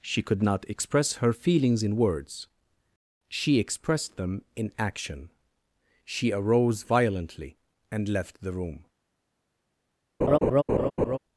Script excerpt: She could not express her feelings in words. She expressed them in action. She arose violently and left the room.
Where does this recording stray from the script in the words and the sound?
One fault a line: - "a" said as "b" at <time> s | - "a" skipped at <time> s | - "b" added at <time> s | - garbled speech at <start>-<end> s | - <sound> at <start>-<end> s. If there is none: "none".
- laugh at 10.2-11.2 s